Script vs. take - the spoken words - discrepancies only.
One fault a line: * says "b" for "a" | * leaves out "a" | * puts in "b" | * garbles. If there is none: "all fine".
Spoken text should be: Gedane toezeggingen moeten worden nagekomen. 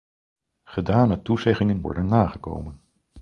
* leaves out "moeten"